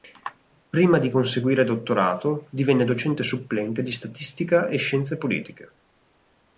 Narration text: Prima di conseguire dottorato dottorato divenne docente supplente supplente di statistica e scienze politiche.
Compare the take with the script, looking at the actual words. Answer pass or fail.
fail